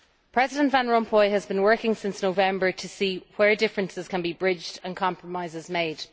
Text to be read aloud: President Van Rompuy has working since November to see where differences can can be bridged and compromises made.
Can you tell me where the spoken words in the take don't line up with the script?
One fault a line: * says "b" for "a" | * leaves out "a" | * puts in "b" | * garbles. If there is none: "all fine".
* puts in "been"
* leaves out "can"